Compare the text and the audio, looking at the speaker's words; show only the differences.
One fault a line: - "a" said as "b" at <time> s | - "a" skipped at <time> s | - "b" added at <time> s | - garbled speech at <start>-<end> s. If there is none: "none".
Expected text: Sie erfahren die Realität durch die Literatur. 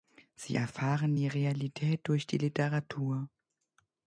none